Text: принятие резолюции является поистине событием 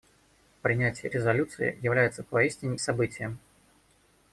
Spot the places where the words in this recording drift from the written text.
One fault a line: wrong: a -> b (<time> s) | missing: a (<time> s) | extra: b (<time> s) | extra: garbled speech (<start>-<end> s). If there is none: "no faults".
no faults